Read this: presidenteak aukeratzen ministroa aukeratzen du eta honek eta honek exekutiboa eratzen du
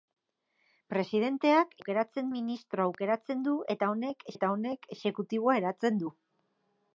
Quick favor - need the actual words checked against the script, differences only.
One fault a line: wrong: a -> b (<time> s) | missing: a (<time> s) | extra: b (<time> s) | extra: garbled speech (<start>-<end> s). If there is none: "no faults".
no faults